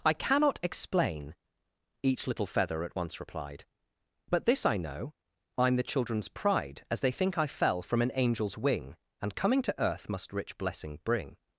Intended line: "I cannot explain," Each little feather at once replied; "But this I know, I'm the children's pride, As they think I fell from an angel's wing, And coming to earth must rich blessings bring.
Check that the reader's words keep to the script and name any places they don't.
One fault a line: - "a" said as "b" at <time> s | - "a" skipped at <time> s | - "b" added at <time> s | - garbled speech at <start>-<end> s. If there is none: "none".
- "blessings" said as "blessing" at 10.6 s